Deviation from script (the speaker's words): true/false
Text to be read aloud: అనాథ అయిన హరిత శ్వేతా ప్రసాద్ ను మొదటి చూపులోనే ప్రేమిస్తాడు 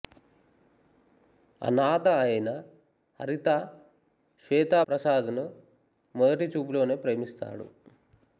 false